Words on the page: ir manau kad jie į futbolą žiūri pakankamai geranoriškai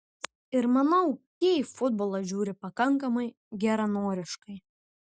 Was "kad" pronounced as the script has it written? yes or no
no